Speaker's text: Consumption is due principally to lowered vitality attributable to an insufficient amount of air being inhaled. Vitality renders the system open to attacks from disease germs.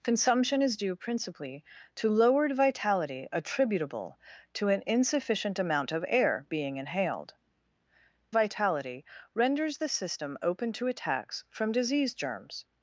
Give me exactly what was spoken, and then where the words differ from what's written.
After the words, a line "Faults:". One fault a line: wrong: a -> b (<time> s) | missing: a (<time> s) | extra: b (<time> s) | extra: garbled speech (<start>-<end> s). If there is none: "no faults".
Consumption is due principally to lowered vitality attributable to an insufficient amount of air being inhaled. Vitality renders the system open to attacks from disease germs.
Faults:
no faults